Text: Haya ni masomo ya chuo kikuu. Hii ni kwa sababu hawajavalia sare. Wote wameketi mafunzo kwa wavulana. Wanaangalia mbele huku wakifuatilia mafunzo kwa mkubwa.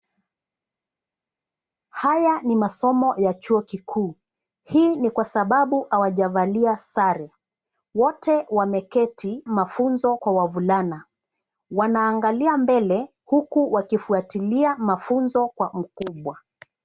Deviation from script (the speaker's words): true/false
false